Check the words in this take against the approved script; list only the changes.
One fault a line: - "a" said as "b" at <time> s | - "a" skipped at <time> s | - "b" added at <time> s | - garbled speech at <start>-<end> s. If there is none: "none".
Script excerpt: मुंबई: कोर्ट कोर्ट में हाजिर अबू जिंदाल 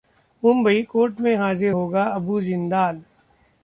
- "कोर्ट" skipped at 1.2 s
- "होगा" added at 1.7 s